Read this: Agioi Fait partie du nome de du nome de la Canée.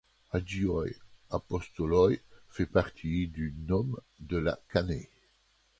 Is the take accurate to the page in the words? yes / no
no